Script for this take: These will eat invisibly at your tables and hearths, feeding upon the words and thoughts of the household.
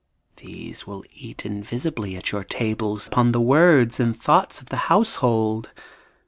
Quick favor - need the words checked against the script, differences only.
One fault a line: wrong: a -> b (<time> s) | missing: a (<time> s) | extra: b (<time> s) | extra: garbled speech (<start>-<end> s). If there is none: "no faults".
missing: and hearths feeding (3.1 s)